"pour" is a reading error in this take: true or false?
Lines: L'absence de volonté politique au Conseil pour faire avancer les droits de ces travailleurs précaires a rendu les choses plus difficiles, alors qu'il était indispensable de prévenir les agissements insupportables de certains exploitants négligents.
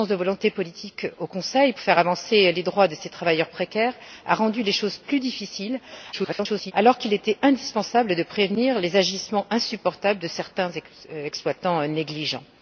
true